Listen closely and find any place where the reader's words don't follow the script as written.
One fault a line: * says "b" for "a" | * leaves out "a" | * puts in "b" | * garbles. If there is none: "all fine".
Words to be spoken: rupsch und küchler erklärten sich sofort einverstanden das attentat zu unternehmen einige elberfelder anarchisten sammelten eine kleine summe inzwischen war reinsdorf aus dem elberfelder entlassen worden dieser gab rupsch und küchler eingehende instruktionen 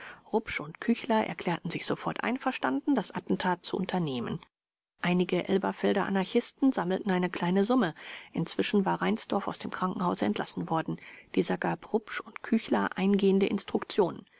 * says "krankenhause" for "elberfelder"